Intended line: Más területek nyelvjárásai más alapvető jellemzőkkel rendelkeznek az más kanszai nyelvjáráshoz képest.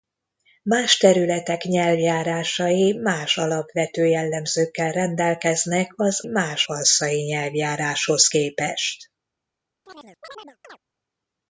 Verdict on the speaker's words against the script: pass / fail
pass